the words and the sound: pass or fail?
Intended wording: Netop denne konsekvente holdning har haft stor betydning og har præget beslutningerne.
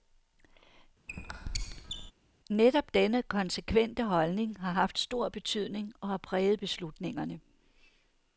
fail